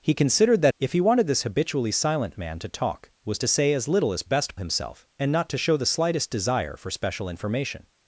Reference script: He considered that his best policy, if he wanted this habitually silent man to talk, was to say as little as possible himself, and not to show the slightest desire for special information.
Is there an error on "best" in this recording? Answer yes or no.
yes